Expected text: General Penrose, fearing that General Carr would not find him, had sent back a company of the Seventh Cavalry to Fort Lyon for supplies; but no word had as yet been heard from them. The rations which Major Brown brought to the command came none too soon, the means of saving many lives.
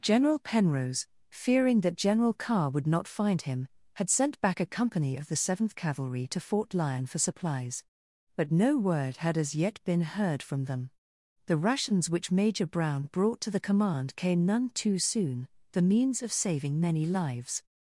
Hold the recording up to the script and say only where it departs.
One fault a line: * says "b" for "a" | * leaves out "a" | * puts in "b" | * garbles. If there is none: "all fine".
all fine